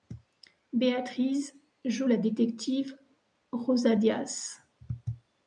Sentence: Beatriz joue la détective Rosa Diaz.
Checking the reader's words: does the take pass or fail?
pass